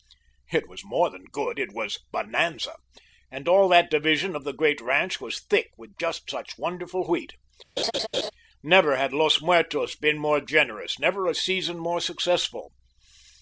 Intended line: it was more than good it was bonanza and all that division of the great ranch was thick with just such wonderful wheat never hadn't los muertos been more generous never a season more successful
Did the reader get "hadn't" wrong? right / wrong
wrong